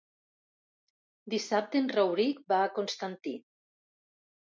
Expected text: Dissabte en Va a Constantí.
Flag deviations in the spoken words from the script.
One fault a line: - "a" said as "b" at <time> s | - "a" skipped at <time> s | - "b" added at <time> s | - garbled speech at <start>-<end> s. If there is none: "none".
- "Rauric" added at 1.9 s